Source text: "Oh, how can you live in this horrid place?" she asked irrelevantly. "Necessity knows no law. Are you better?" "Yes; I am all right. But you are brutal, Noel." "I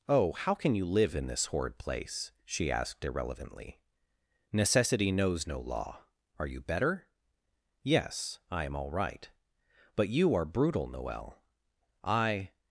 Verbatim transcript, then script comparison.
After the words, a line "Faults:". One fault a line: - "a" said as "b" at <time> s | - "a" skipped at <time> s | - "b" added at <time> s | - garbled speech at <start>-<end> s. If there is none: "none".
"Oh, how can you live in this horrid place?" she asked irrelevantly. "Necessity knows no law. Are you better?" "Yes; I am all right. But you are brutal, Noel." "I
Faults:
none